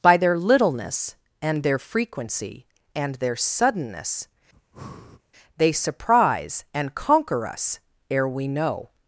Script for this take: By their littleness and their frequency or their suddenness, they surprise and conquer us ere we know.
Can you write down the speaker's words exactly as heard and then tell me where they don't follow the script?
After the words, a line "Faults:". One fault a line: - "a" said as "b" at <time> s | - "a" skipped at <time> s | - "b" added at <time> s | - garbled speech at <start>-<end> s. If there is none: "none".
By their littleness and their frequency and their suddenness, they surprise and conquer us ere we know.
Faults:
- "or" said as "and" at 3.0 s